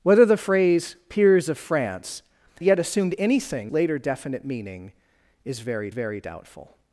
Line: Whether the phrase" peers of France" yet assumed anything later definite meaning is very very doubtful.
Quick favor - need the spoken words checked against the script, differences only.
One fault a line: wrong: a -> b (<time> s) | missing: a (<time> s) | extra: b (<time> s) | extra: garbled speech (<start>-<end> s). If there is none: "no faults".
no faults